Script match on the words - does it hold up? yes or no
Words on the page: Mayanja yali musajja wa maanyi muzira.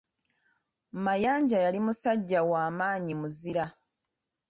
yes